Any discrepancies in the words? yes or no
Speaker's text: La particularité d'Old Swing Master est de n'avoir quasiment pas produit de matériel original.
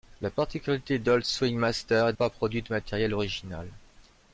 yes